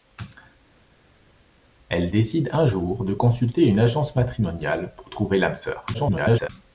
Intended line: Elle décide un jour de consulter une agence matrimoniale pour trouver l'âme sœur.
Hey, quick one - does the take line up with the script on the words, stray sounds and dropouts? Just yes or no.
no